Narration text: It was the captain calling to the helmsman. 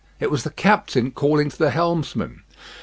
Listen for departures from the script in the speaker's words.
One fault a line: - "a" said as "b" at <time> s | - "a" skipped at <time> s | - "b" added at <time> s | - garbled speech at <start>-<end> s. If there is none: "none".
none